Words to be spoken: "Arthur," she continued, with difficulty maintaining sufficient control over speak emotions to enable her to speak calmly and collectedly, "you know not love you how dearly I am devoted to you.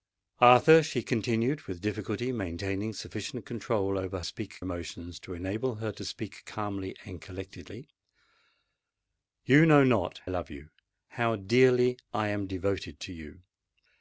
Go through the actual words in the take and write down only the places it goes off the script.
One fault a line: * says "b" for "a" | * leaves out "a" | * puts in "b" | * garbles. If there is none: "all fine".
all fine